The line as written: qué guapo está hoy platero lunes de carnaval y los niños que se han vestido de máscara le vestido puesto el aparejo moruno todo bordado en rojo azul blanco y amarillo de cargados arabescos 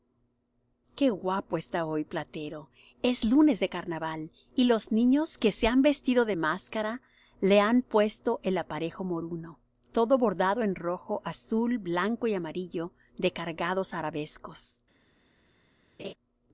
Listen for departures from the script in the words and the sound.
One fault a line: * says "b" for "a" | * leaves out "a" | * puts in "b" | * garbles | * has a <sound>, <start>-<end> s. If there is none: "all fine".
* puts in "es"
* says "han" for "vestido"
* has a laugh, 16.0-16.1 s